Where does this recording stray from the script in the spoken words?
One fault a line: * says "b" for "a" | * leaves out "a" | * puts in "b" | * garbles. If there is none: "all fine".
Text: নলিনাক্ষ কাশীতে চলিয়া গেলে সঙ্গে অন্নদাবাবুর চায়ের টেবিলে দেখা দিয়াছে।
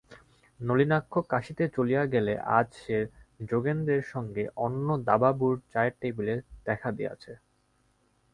* puts in "আজ সে যোগেন্দ্রের"